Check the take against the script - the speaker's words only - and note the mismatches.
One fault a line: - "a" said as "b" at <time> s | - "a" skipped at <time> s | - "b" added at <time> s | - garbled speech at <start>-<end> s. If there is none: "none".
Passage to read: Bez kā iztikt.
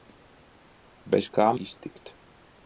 none